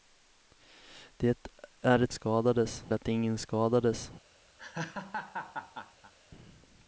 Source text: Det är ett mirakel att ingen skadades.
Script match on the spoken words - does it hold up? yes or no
no